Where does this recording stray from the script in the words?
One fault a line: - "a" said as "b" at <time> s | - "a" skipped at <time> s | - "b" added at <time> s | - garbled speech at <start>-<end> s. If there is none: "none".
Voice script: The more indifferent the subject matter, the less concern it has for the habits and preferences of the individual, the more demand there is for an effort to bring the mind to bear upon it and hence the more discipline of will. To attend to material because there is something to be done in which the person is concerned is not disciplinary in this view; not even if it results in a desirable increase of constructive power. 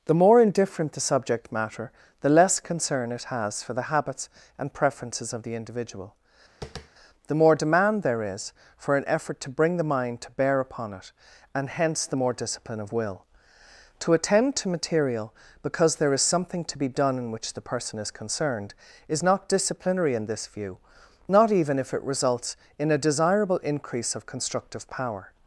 none